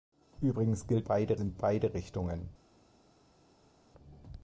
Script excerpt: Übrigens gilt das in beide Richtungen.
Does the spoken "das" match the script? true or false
false